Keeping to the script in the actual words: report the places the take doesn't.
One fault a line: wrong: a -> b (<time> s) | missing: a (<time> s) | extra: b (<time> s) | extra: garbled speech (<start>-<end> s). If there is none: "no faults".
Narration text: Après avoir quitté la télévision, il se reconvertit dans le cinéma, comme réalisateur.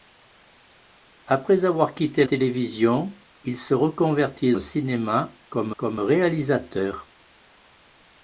missing: la (2.2 s)
missing: dans (4.5 s)
extra: comme (5.7 s)